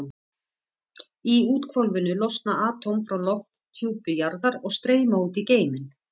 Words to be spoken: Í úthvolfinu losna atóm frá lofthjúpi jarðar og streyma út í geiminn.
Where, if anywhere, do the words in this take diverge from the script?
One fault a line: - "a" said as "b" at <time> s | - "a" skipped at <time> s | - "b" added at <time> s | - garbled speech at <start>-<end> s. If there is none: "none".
none